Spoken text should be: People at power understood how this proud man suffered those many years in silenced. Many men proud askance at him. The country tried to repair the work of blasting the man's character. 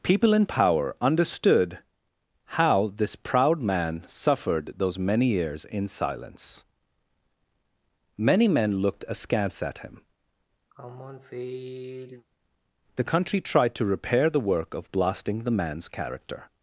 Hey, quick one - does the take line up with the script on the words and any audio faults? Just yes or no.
no